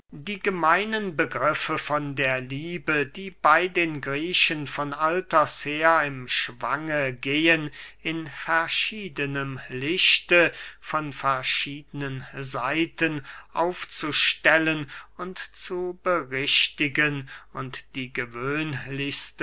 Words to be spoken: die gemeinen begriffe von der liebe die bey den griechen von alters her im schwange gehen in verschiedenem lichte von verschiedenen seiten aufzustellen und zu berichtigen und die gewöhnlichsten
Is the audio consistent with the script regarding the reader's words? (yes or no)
yes